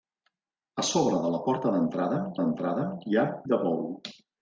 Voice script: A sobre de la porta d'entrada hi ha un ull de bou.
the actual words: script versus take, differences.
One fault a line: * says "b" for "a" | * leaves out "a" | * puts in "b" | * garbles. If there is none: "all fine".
* puts in "d'entrada"
* leaves out "un ull"